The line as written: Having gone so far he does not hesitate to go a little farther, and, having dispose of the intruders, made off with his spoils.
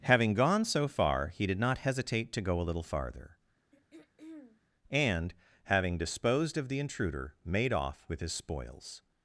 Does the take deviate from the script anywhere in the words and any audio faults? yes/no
yes